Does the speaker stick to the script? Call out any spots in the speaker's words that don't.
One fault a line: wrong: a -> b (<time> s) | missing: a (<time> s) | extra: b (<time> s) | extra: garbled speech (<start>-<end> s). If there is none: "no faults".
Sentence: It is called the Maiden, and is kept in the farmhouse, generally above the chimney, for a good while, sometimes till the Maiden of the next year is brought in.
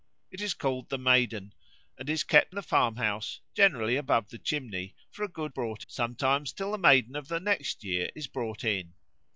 missing: in (2.6 s)
wrong: while -> brought (5.5 s)